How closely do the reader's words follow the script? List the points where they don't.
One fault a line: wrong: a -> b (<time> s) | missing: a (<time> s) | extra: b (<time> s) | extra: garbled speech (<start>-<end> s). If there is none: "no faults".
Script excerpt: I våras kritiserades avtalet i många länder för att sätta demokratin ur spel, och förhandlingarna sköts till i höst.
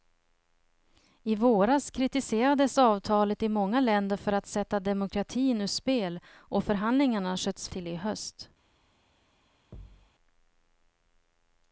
no faults